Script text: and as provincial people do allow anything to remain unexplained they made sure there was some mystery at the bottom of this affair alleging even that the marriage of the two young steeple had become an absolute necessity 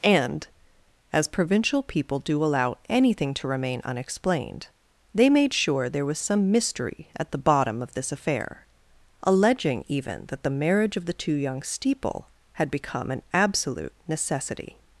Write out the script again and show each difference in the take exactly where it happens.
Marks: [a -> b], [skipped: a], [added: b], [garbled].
and as provincial people do allow anything to remain unexplained they made sure there was some mystery at the bottom of this affair alleging even that the marriage of the two young steeple had become an absolute necessity